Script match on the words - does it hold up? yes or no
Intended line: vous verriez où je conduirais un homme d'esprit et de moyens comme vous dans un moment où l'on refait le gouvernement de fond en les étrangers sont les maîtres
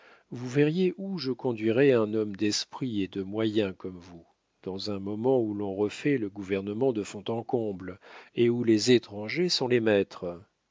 no